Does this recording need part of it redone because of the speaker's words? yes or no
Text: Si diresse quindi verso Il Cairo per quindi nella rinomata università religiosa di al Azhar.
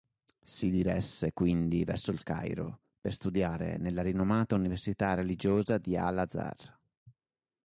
yes